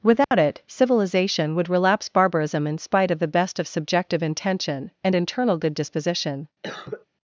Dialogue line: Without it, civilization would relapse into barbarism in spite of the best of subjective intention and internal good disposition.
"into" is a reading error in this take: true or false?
true